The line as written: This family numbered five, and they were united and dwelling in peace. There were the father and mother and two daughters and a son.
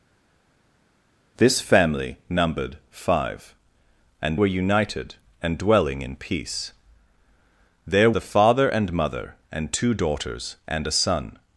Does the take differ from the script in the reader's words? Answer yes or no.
yes